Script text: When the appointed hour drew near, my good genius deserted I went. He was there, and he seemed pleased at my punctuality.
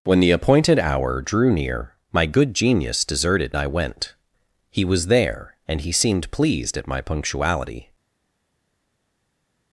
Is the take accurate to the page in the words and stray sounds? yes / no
yes